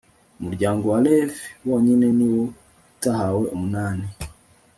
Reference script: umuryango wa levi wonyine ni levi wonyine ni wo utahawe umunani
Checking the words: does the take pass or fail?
fail